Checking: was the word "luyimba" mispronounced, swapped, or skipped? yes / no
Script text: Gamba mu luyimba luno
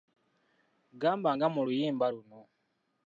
no